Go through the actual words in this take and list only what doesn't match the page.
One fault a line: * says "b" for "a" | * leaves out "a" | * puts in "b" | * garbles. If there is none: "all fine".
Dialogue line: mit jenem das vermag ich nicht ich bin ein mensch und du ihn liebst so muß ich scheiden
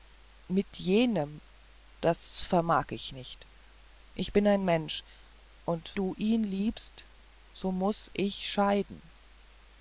all fine